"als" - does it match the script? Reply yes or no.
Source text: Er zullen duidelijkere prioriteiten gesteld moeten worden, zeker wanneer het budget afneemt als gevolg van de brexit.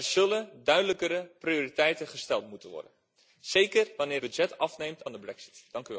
no